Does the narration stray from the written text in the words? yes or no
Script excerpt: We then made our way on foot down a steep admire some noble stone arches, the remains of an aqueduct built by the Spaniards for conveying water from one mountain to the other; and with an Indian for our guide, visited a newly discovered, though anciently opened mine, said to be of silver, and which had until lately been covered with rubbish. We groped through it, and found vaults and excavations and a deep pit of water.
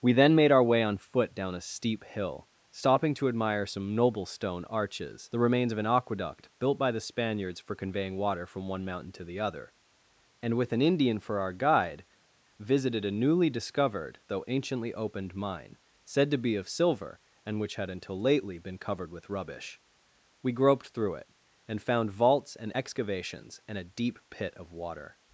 yes